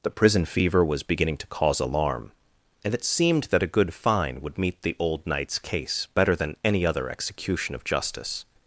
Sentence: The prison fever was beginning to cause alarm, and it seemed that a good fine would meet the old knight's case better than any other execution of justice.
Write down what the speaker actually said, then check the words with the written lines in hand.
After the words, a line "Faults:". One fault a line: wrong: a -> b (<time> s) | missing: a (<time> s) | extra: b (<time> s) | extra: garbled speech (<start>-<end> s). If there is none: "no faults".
The prison fever was beginning to cause alarm, and it seemed that a good fine would meet the old knight's case better than any other execution of justice.
Faults:
no faults